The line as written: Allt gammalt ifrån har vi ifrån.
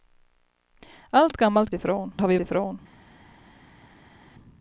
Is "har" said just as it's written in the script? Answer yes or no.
yes